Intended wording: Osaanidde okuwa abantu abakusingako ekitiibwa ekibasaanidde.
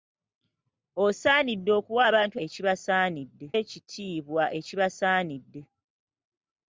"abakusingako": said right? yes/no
no